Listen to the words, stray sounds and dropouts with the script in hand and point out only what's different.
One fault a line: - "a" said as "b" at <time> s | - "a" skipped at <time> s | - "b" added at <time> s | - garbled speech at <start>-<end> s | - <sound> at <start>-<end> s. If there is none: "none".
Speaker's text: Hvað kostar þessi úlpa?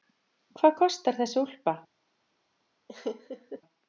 - laugh at 2.9-3.6 s